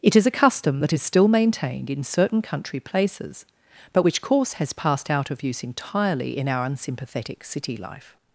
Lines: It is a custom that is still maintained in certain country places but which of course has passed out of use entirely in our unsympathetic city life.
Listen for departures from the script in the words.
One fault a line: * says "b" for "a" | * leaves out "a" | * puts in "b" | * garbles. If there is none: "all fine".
* leaves out "of"